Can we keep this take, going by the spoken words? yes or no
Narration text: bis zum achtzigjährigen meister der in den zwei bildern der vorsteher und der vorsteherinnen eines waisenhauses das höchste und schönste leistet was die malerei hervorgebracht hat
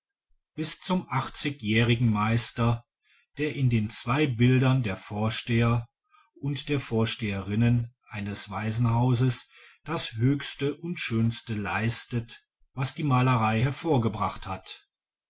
yes